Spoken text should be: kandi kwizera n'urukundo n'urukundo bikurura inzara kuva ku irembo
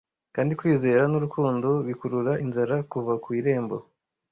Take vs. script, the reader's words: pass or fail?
fail